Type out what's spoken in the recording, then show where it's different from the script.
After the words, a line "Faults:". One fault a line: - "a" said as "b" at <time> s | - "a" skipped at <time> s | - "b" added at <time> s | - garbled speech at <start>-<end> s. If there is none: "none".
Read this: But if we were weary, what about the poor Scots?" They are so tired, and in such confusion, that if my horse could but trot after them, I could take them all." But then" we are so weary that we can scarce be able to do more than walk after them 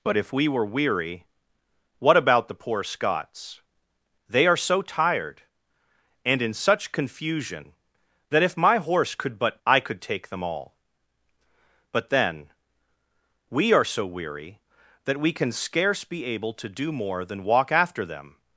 But if we were weary, what about the poor Scots?" They are so tired, and in such confusion, that if my horse could but I could take them all." But then" we are so weary that we can scarce be able to do more than walk after them
Faults:
- "trot after them" skipped at 9.6 s